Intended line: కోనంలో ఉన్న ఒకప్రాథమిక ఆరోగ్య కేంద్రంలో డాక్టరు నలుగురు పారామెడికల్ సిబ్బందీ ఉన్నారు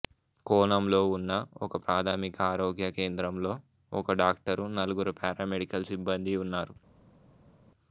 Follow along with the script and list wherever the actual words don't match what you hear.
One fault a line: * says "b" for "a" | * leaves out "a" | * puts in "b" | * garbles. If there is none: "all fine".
* puts in "ఒక"